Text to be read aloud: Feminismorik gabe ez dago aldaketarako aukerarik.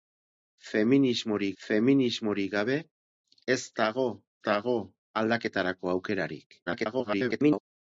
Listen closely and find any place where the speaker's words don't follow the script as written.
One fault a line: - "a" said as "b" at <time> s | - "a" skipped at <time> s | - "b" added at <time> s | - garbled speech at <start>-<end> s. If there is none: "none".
- "feminismorik" added at 1.6 s
- "dago" added at 4.5 s
- garbled speech at 6.7-7.6 s